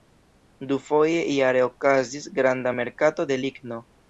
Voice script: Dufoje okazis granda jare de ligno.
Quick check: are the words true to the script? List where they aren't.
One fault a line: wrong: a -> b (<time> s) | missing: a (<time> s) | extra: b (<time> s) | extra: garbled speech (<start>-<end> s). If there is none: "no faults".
extra: jare (1.4 s)
wrong: jare -> merkato (2.8 s)